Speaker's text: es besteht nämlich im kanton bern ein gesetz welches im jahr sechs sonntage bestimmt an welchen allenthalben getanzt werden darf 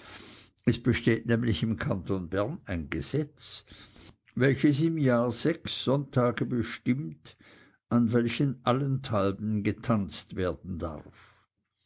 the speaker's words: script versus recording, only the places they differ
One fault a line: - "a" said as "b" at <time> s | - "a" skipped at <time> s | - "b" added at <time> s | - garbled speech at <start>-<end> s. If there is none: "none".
none